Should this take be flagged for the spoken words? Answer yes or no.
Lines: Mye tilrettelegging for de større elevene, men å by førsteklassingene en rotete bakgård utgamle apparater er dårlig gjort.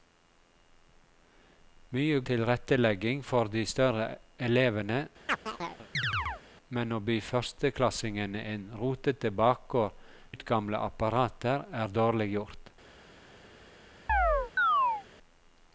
no